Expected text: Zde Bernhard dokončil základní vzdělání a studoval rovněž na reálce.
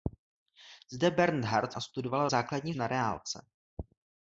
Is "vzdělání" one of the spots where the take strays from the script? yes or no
yes